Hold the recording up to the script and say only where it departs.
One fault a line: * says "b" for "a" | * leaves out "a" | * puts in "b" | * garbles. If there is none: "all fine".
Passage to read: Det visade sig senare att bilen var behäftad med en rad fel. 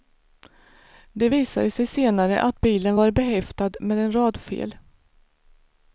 all fine